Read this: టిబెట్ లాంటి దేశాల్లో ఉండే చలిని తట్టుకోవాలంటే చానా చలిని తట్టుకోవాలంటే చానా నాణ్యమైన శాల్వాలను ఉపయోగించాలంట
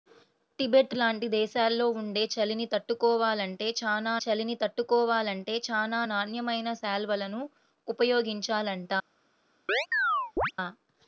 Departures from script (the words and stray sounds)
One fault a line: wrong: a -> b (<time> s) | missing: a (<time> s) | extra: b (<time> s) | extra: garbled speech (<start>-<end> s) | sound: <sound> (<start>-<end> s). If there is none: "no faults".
sound: chirp (9.7-10.5 s)